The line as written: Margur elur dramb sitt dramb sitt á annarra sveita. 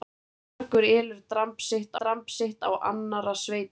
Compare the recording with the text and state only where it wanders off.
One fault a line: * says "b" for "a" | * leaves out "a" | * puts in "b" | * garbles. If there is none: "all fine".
all fine